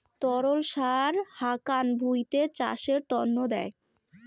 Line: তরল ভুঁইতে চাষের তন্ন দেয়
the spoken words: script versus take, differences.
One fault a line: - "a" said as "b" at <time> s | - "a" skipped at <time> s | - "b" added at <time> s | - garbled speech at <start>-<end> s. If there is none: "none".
- "সার হাকান" added at 0.7 s